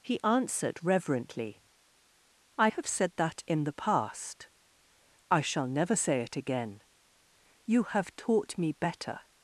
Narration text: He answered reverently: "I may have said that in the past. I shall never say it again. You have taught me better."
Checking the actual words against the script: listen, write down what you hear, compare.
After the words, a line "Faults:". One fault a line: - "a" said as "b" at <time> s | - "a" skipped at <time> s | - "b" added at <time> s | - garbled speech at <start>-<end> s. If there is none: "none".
He answered reverently: "I have said that in the past. I shall never say it again. You have taught me better."
Faults:
- "may" skipped at 2.7 s